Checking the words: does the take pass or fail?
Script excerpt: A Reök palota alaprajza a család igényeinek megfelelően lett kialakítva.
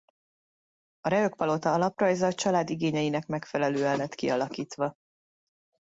pass